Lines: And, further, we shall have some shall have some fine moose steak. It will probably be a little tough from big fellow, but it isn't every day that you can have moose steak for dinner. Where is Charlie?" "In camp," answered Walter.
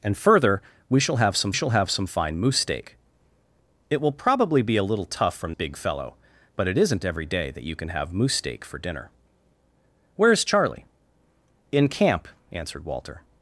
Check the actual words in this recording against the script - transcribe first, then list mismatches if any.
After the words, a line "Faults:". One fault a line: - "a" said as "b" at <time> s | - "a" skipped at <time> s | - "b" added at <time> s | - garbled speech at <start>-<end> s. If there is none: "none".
And, further, we shall have some shall have some fine moose steak. It will probably be a little tough from big fellow, but it isn't every day that you can have moose steak for dinner. Where is Charlie?" "In camp," answered Walter.
Faults:
none